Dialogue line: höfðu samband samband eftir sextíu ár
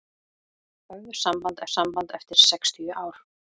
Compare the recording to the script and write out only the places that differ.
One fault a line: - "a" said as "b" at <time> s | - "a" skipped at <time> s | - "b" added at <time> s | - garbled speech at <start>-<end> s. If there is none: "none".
none